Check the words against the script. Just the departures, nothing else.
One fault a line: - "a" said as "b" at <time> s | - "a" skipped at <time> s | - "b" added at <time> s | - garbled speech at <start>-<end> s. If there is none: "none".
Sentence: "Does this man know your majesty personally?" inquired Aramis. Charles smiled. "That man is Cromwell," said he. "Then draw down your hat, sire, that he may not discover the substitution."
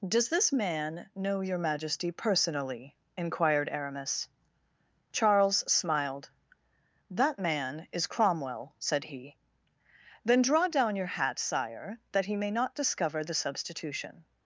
none